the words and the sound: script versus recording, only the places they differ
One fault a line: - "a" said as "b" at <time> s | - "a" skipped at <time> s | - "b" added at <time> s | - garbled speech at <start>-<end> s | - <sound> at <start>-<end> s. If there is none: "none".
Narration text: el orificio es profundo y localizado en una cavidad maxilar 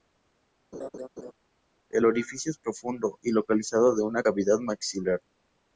- laugh at 0.7-1.3 s